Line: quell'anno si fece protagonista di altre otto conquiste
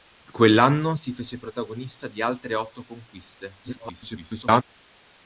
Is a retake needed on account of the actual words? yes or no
yes